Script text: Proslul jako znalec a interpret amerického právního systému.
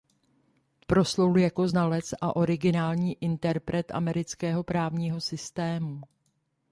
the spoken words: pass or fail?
fail